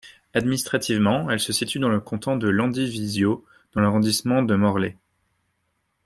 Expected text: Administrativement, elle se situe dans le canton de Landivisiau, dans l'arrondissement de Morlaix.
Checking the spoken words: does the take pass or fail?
pass